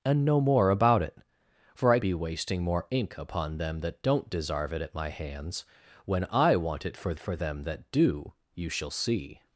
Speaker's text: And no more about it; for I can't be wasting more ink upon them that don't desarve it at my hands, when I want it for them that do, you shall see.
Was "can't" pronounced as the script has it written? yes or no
no